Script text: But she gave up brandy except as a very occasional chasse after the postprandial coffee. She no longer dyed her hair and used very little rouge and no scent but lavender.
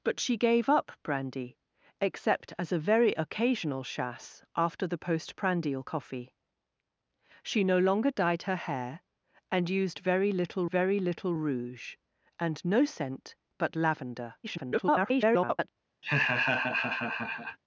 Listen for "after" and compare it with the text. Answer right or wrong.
right